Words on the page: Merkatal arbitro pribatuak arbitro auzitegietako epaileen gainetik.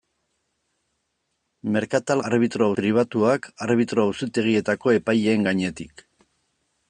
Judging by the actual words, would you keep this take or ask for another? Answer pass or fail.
pass